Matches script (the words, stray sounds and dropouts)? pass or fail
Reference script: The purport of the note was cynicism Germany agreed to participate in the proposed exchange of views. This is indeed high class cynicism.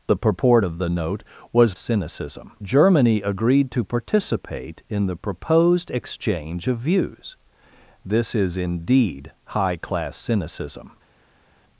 pass